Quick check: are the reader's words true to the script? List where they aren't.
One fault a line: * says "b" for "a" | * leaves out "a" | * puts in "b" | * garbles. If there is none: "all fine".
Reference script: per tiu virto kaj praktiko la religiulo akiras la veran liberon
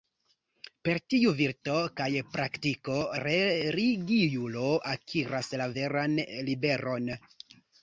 * leaves out "la"